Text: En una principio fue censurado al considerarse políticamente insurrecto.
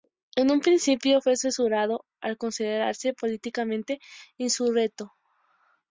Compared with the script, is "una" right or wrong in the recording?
wrong